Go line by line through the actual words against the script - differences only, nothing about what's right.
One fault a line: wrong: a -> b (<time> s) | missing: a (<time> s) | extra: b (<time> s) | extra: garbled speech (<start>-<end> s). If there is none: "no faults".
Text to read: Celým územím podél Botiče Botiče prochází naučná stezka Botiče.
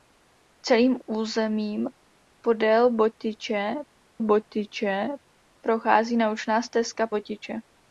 no faults